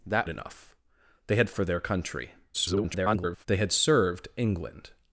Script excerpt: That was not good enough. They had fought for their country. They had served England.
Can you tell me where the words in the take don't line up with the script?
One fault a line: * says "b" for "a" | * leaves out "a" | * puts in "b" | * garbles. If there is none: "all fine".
* leaves out "was not good"
* leaves out "fought"
* garbles